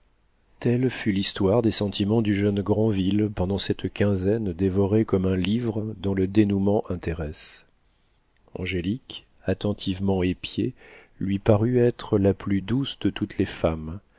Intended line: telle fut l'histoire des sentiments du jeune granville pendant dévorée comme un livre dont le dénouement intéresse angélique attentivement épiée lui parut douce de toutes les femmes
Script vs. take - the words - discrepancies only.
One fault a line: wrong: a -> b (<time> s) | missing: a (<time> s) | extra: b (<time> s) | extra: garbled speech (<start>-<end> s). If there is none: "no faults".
extra: cette quinzaine (3.6 s)
extra: être la plus (11.8 s)